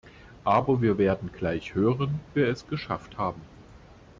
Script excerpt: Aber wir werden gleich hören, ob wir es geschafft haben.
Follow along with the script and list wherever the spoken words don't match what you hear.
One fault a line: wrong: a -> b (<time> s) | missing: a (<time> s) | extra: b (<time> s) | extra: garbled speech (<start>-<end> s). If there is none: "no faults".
missing: ob (2.2 s)